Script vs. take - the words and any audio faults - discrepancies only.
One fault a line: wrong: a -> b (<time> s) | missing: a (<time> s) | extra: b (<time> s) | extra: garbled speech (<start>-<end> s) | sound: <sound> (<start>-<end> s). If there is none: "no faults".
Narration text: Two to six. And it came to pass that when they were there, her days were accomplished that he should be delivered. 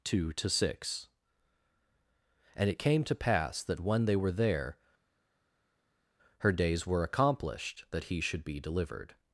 no faults